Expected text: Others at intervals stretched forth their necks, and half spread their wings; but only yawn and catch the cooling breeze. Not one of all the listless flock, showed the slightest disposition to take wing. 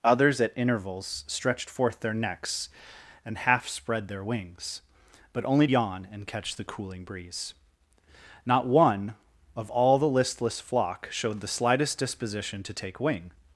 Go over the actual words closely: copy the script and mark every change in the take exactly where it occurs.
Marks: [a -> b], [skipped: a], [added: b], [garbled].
Others at intervals stretched forth their necks, and half spread their wings; but only yawn and catch the cooling breeze. Not one of all the listless flock, showed the slightest disposition to take wing.